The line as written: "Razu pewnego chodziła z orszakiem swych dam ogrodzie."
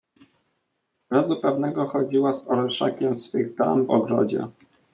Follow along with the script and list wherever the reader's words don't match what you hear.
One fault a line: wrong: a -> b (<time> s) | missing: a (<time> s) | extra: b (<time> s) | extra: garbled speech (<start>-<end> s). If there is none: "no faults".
no faults